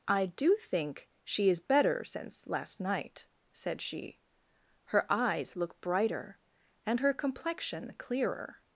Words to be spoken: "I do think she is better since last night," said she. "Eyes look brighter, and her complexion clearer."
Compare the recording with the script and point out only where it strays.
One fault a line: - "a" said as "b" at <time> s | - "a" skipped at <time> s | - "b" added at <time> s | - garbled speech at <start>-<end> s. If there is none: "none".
- "Her" added at 4.8 s